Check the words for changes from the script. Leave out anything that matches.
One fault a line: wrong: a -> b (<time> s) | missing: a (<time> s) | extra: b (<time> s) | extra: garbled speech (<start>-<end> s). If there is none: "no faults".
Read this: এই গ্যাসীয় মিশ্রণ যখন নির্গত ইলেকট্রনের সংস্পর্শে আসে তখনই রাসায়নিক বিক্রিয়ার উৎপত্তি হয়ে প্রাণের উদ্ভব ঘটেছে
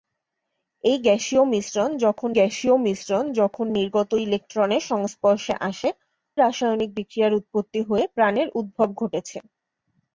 extra: গ্যাসীয় মিশ্রণ যখন (2.3 s)
missing: তখনই (5.9 s)